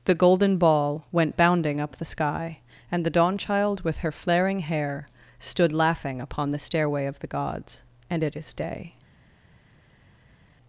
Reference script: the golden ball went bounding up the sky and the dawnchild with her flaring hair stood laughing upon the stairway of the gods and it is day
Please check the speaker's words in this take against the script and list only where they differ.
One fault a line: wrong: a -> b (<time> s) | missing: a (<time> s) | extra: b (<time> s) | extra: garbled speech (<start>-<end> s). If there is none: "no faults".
no faults